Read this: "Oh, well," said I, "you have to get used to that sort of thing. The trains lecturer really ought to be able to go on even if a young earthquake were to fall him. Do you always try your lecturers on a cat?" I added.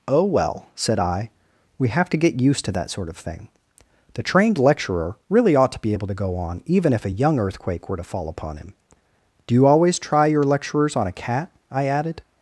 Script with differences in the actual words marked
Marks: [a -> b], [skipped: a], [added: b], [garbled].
"Oh, well," said I, ["you -> we] have to get used to that sort of thing. The [trains -> trained] lecturer really ought to be able to go on even if a young earthquake were to fall [added: upon] him. Do you always try your lecturers on a cat?" I added.